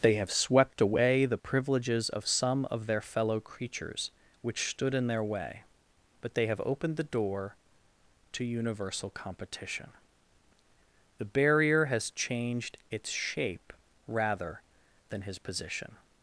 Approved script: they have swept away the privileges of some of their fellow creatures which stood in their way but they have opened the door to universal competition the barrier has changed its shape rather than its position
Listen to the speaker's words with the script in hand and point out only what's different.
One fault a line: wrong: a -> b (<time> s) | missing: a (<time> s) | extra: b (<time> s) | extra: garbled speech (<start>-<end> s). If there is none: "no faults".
wrong: its -> his (15.2 s)